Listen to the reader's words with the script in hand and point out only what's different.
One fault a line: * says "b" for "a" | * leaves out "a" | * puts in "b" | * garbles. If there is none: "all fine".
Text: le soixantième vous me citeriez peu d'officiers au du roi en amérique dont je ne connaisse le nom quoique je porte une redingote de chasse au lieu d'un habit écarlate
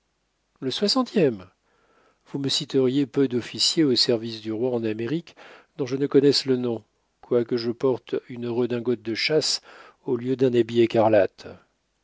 * puts in "service"